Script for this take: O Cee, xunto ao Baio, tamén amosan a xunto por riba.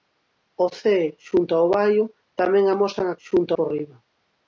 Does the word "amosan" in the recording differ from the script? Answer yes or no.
no